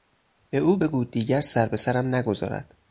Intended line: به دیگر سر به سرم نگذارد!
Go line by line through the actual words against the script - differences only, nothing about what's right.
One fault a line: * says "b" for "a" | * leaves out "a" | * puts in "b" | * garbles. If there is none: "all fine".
* puts in "او بگو"